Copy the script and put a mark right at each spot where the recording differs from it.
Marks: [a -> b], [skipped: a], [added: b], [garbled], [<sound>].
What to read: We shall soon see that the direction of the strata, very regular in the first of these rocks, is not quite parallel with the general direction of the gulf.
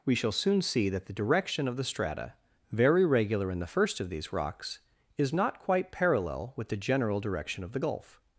We shall soon see that the direction of the strata, very regular in the first of these rocks, is not quite parallel with the general direction of the gulf.